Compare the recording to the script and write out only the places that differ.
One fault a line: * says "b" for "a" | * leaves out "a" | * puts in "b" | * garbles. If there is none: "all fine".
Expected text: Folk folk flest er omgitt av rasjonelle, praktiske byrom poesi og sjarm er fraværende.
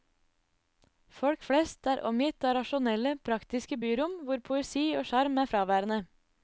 * leaves out "folk"
* puts in "hvor"